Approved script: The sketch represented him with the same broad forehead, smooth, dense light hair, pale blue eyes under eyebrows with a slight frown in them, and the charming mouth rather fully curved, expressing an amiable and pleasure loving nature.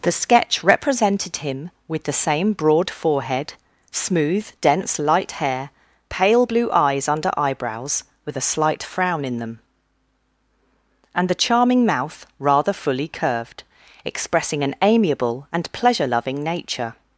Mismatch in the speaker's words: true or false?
false